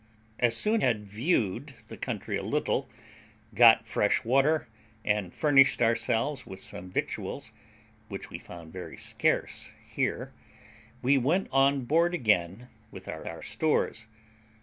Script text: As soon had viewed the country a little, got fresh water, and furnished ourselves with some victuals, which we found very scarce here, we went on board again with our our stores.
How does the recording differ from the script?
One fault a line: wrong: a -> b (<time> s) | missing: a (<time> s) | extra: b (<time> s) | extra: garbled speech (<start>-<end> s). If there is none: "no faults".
no faults